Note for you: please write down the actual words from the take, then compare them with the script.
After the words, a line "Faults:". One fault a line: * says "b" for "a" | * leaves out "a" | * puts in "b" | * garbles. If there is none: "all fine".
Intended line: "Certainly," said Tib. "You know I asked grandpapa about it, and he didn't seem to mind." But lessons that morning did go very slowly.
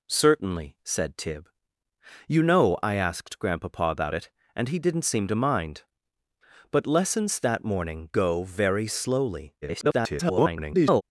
"Certainly," said Tib. "You know I asked grandpapa about it, and he didn't seem to mind." But lessons that morning go very slowly. [garbled]
Faults:
* leaves out "did"
* garbles